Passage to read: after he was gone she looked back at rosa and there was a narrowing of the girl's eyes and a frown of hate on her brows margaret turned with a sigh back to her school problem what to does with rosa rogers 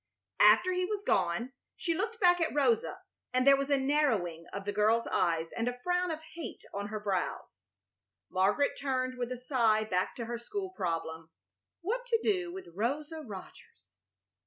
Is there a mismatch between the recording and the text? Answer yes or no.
yes